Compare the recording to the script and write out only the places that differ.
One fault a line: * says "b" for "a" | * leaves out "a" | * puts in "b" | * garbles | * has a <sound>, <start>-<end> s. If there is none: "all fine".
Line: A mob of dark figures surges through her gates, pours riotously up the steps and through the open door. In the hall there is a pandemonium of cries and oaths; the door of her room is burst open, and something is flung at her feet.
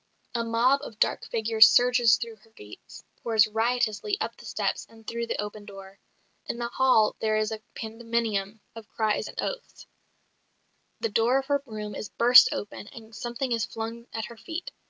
all fine